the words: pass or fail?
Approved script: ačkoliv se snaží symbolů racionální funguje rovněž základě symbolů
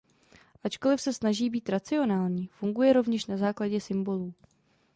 fail